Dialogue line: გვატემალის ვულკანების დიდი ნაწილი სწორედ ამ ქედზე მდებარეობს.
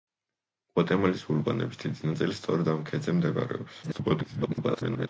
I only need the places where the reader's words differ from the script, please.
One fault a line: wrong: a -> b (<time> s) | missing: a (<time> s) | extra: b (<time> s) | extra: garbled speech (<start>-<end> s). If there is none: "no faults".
extra: garbled speech (3.8-5.1 s)